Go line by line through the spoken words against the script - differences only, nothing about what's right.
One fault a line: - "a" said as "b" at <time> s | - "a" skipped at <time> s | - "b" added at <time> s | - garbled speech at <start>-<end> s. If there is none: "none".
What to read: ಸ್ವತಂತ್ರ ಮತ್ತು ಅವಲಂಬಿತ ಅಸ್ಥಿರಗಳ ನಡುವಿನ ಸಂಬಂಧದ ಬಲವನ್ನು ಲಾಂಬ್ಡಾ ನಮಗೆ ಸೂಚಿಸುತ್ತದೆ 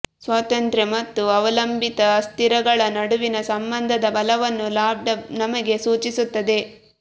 none